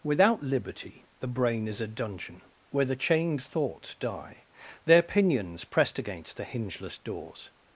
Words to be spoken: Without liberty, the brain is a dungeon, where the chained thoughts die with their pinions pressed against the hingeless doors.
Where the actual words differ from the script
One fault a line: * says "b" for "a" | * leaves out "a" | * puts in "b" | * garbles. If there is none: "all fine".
* leaves out "with"